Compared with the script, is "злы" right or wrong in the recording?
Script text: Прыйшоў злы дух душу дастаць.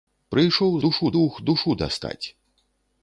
wrong